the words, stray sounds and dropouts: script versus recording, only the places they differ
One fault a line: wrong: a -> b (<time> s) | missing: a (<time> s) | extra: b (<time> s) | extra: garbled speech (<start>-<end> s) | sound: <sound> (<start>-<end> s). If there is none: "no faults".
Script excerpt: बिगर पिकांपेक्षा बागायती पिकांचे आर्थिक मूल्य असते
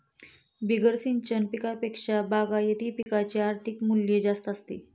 extra: सिंचन (1.0 s)
sound: dropout (3.0-3.1 s)
extra: जास्त (4.2 s)